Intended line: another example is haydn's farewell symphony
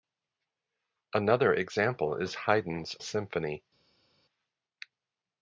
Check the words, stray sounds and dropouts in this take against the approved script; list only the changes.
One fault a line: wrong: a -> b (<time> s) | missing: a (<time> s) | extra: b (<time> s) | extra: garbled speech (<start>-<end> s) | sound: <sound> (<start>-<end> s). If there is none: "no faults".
missing: farewell (3.0 s)